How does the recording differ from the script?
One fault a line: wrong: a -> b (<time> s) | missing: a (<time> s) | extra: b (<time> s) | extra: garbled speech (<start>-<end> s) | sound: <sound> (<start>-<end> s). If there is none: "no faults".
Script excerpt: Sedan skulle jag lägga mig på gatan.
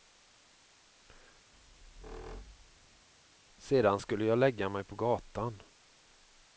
sound: squeak (1.5-3.1 s)